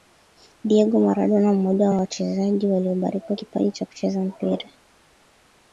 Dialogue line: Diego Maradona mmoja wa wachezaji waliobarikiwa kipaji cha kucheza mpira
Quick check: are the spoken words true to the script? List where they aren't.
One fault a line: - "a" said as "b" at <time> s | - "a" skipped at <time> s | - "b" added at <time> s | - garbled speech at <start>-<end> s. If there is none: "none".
none